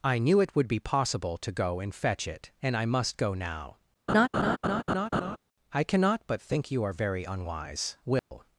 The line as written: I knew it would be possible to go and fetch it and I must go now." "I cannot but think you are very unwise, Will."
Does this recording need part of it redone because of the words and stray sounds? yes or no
yes